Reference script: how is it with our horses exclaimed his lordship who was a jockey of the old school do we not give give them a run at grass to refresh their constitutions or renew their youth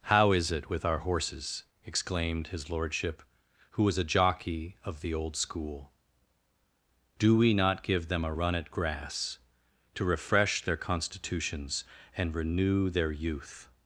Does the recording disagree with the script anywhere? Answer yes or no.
yes